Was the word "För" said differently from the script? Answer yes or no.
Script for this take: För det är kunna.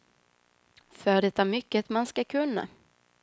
no